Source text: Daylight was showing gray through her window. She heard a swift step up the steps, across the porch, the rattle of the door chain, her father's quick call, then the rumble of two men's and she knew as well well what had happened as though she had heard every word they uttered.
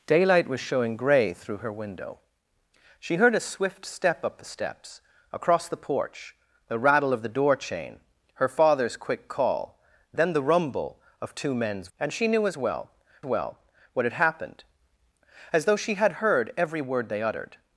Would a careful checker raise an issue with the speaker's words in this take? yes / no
no